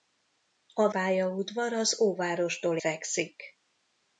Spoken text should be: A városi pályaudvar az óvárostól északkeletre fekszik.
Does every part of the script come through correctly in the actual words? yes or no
no